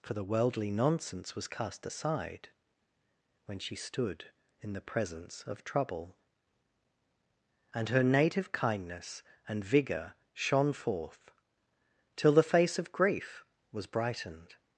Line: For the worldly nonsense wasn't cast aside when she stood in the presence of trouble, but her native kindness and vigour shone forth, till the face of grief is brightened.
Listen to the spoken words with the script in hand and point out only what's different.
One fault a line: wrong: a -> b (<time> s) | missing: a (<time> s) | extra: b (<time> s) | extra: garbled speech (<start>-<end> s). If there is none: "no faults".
wrong: wasn't -> was (1.4 s)
wrong: but -> and (7.7 s)
wrong: is -> was (13.7 s)